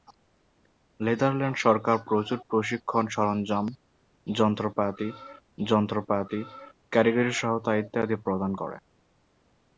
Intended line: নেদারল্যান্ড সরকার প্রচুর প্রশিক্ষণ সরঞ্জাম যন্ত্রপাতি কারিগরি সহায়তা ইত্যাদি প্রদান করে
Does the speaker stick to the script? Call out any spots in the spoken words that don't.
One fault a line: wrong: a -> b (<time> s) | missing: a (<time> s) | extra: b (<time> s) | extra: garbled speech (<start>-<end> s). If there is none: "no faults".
extra: যন্ত্রপাতি (5.6 s)